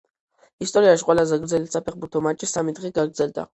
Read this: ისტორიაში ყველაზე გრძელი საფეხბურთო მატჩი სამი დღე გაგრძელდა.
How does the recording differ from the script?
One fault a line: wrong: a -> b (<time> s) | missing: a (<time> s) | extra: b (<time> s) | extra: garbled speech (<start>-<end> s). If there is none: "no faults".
no faults